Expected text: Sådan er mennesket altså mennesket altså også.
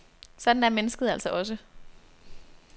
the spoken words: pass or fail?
fail